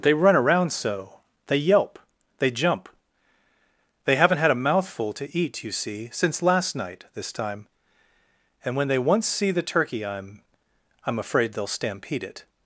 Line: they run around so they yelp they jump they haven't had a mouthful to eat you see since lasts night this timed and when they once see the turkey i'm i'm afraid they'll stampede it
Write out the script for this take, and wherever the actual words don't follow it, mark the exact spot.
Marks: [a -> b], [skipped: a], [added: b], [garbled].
they run around so they yelp they jump they haven't had a mouthful to eat you see since [lasts -> last] night this [timed -> time] and when they once see the turkey i'm i'm afraid they'll stampede it